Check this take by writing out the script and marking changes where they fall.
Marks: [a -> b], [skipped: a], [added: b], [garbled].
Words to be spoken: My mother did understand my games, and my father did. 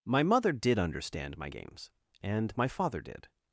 My mother did understand my games, and my father did.